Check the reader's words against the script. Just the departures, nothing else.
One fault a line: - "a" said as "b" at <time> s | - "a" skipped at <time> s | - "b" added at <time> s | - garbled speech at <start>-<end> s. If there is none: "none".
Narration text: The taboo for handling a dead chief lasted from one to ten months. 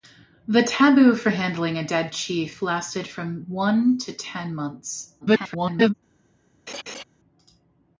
- garbled speech at 5.2-5.9 s